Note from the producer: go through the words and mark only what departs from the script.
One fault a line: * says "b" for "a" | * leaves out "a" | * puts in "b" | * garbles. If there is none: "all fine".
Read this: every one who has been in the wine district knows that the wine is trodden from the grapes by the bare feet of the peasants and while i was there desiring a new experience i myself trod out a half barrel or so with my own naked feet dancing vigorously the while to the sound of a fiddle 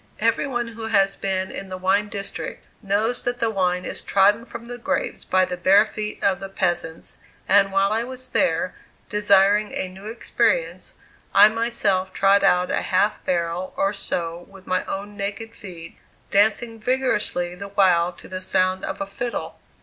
all fine